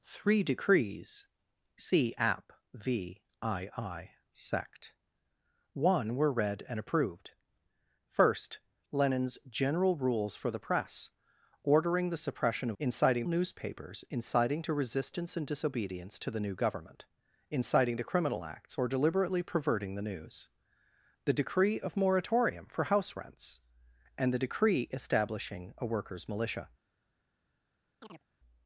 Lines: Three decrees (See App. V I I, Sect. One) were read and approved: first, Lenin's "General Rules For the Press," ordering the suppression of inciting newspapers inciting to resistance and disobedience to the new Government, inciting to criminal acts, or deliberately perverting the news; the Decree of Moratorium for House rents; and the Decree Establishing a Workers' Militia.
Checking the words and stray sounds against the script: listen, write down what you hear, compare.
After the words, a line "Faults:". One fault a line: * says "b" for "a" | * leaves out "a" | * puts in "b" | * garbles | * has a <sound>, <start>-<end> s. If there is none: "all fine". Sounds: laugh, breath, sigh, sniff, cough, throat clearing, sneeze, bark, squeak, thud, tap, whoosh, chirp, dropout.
Three decrees (See App. V I I, Sect. One) were read and approved: first, Lenin's "General Rules For the Press," ordering the suppression of inciting newspapers inciting to resistance and disobedience to the new Government, inciting to criminal acts, or deliberately perverting the news; the Decree of Moratorium for House rents; and the Decree Establishing a Workers' Militia.
Faults:
* has a chirp, 28.0-28.2 s